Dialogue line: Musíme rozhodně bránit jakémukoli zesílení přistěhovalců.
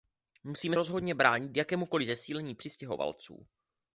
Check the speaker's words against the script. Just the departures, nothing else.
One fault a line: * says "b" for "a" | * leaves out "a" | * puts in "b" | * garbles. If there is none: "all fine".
all fine